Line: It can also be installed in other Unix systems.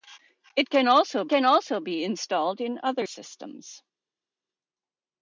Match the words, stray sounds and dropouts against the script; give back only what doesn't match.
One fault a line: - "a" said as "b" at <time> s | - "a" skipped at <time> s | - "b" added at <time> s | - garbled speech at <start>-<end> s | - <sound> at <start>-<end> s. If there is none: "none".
- "can also" added at 1.3 s
- "Unix" skipped at 3.1 s